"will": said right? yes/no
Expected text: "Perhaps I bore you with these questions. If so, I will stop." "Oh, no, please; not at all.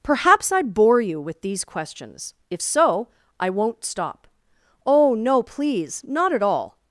no